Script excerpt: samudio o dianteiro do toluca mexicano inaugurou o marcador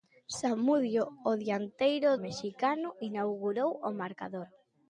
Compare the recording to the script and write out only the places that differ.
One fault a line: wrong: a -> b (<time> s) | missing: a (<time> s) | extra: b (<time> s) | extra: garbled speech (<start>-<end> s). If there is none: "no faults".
missing: do toluca (2.1 s)